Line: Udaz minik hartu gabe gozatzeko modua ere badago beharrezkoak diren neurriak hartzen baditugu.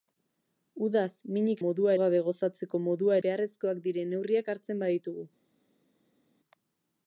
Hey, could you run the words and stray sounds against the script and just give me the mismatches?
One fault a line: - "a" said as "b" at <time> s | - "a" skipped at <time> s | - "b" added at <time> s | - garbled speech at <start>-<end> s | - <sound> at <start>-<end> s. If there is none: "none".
- "hartu" said as "modua" at 1.6 s
- "ere badago" skipped at 3.2 s